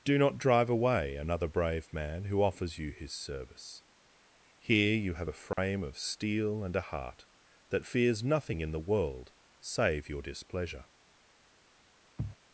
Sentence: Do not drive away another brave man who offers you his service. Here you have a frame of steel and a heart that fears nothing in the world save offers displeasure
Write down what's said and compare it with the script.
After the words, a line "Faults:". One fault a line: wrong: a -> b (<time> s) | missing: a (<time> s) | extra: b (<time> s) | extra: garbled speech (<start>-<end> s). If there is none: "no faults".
Do not drive away another brave man who offers you his service. Here you have a frame of steel and a heart that fears nothing in the world save your displeasure
Faults:
wrong: offers -> your (10.1 s)